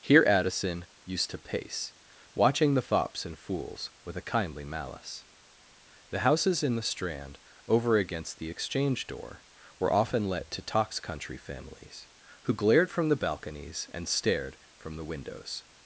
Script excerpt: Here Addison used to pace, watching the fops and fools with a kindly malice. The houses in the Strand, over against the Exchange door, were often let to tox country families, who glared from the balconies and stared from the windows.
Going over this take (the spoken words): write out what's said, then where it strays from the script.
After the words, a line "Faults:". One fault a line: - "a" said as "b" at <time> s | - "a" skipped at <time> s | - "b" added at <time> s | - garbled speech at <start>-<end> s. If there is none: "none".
Here Addison used to pace, watching the fops and fools with a kindly malice. The houses in the Strand, over against the Exchange door, were often let to tox country families, who glared from the balconies and stared from the windows.
Faults:
none